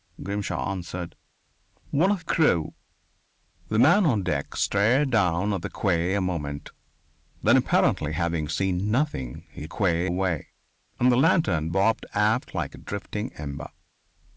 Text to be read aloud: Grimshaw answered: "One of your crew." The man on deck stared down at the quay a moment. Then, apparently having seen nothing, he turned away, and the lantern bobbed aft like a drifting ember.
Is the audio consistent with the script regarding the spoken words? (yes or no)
no